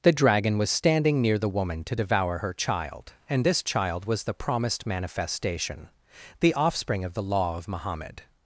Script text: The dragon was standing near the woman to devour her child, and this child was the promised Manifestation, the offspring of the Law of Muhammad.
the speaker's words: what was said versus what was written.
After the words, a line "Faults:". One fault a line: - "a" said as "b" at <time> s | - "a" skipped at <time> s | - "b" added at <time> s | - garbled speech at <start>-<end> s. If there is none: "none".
The dragon was standing near the woman to devour her child, and this child was the promised Manifestation, the offspring of the Law of Muhammad.
Faults:
none